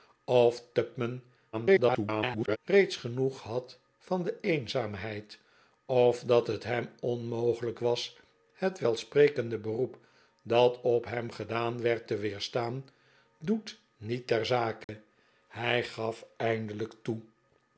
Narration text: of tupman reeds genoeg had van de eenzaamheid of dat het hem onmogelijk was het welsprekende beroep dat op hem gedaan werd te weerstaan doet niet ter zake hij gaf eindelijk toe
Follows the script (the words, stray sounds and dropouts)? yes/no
no